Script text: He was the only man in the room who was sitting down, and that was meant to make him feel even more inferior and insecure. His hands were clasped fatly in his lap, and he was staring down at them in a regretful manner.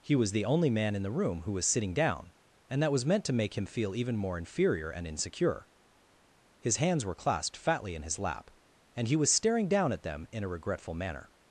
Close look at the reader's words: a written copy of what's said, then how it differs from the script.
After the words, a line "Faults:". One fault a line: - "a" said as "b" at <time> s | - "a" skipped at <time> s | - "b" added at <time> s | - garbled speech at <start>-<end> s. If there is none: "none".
He was the only man in the room who was sitting down, and that was meant to make him feel even more inferior and insecure. His hands were clasped fatly in his lap, and he was staring down at them in a regretful manner.
Faults:
none